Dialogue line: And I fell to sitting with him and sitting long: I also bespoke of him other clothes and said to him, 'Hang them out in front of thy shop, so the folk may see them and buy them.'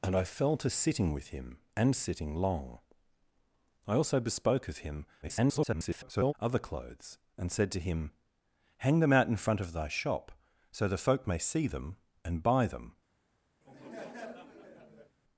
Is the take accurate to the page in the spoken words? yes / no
no